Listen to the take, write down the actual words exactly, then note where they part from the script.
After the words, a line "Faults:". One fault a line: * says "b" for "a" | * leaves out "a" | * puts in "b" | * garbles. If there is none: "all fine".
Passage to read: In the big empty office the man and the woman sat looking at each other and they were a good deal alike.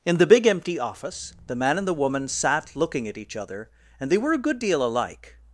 In the big empty office the man and the woman sat looking at each other and they were a good deal alike.
Faults:
all fine